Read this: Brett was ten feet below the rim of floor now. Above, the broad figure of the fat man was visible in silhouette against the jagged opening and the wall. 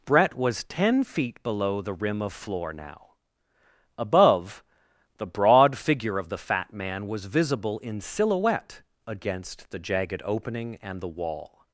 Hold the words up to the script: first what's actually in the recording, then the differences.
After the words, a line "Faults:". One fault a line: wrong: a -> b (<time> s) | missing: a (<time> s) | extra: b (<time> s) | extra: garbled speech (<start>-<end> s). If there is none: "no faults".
Brett was ten feet below the rim of floor now. Above, the broad figure of the fat man was visible in silhouette against the jagged opening and the wall.
Faults:
no faults